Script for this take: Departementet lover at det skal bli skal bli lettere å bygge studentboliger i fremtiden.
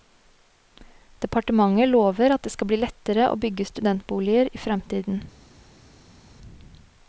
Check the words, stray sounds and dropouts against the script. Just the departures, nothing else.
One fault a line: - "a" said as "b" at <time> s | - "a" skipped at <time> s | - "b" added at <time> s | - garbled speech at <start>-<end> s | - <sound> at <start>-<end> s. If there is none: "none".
- "skal bli" skipped at 2.8 s